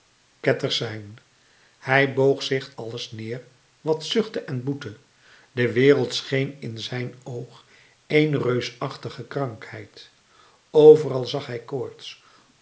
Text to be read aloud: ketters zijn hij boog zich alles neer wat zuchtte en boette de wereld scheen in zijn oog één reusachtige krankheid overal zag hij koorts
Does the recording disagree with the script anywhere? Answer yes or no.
no